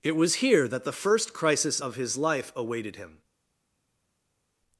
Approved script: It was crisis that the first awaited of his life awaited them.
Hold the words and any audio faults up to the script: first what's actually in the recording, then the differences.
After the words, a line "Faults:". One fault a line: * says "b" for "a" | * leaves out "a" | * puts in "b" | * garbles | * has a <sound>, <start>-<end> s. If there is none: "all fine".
It was here that the first crisis of his life awaited him.
Faults:
* says "here" for "crisis"
* says "crisis" for "awaited"
* says "him" for "them"